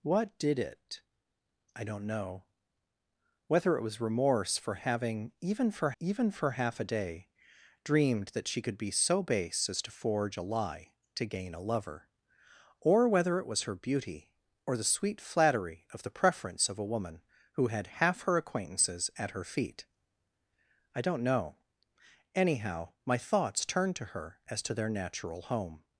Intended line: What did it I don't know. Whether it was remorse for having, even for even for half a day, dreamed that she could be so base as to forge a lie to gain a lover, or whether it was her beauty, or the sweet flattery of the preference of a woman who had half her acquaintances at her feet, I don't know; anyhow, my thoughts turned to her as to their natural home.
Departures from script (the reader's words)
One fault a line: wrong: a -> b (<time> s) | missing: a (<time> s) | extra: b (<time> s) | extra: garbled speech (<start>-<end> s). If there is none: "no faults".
no faults